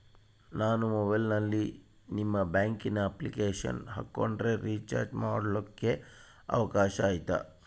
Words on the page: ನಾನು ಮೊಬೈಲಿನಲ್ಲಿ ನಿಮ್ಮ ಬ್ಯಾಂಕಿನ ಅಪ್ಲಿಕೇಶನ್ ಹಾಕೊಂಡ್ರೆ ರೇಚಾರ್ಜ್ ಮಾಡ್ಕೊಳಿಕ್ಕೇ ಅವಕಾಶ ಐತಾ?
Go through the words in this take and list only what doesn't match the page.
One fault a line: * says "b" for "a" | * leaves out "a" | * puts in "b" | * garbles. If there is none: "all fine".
all fine